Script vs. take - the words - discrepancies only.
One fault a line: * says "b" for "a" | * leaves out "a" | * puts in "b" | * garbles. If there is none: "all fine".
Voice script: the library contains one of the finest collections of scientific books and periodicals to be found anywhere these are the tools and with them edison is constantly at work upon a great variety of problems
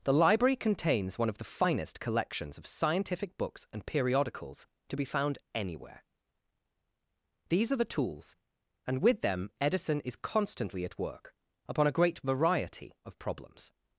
all fine